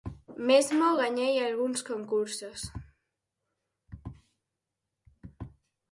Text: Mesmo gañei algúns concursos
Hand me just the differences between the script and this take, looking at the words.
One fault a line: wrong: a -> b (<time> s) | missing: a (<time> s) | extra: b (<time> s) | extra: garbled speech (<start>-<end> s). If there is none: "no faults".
no faults